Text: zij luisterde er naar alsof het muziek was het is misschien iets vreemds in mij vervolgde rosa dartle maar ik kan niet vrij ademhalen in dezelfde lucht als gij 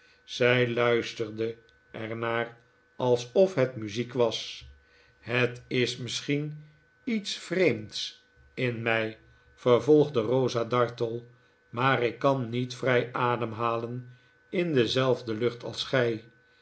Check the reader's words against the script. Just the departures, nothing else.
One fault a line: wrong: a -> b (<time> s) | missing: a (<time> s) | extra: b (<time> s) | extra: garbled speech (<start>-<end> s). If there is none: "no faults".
no faults